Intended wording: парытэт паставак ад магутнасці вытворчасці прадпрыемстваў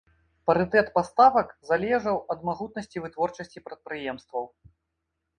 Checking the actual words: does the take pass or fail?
fail